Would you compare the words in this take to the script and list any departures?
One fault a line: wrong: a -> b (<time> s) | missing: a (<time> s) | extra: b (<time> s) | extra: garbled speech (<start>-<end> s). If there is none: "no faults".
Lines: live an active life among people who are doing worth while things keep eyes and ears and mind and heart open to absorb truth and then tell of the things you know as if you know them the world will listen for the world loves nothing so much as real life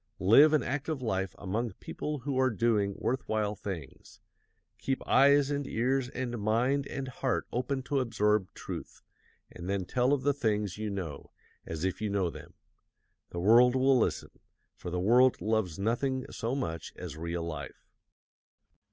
no faults